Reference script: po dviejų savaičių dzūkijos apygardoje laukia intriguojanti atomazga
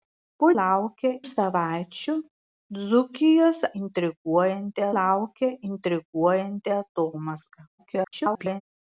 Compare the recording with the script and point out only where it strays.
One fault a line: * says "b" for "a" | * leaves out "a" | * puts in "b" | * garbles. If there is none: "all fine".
* says "laukia" for "dviejų"
* says "intriguojanti" for "apygardoje"
* garbles